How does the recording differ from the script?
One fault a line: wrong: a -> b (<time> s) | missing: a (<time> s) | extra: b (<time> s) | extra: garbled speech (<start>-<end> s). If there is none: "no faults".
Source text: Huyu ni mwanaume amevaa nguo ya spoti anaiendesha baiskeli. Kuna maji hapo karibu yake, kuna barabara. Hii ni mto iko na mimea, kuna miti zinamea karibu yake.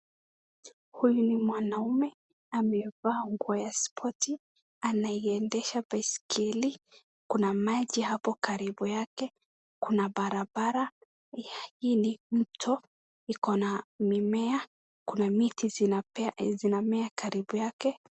no faults